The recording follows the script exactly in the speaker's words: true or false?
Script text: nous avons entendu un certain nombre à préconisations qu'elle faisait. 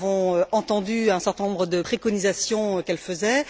false